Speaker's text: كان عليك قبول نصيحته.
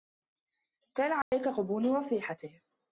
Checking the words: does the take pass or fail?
pass